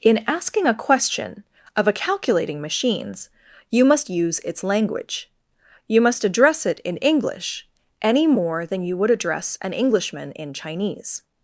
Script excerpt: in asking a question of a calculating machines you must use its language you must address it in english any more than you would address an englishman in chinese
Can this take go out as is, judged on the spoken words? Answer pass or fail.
pass